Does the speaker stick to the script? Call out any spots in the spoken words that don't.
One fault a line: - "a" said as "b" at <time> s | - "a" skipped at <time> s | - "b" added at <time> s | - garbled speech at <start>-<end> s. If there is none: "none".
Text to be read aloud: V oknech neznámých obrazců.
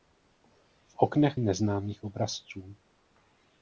none